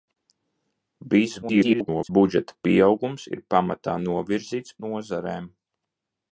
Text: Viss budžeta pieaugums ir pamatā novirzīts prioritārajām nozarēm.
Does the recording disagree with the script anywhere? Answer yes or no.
yes